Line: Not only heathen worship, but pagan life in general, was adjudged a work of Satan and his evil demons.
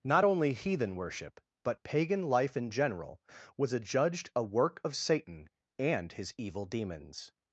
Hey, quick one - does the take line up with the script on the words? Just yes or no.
yes